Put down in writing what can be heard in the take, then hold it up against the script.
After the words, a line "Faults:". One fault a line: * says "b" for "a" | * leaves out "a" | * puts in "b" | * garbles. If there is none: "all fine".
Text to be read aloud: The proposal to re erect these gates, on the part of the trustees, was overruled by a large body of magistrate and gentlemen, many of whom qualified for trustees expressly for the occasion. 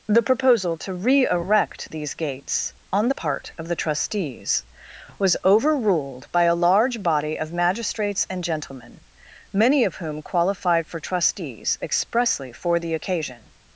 The proposal to re erect these gates, on the part of the trustees, was overruled by a large body of magistrates and gentlemen, many of whom qualified for trustees expressly for the occasion.
Faults:
* says "magistrates" for "magistrate"